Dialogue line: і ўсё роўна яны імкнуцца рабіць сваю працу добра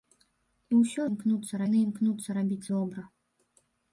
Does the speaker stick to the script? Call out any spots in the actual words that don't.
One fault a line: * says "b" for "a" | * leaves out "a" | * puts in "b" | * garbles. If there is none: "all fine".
* says "імкнуцца" for "роўна"
* leaves out "сваю працу"